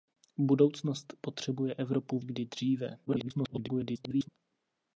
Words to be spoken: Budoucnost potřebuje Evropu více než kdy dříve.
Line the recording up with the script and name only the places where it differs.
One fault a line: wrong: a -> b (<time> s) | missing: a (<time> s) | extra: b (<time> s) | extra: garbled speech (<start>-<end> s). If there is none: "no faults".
missing: více než (2.2 s)
extra: garbled speech (3.1-4.3 s)